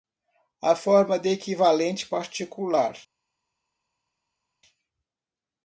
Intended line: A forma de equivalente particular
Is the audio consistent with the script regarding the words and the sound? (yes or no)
yes